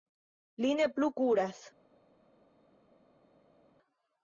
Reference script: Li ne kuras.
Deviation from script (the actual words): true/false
true